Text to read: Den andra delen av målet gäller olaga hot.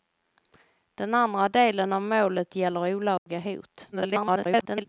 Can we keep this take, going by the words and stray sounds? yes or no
no